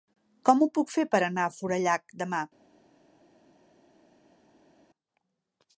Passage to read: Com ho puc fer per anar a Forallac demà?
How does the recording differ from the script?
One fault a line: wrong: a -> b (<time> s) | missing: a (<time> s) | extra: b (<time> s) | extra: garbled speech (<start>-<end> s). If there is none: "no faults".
no faults